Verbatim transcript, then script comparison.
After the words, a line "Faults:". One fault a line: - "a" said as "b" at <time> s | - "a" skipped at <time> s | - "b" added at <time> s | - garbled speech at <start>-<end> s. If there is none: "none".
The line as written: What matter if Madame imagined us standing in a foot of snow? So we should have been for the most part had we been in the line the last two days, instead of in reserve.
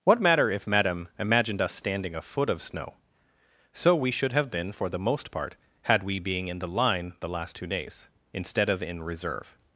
What matter if Madame imagined us standing a foot of snow? So we should have been for the most part had we being in the line the last two days, instead of in reserve.
Faults:
- "in" skipped at 2.1 s
- "been" said as "being" at 6.2 s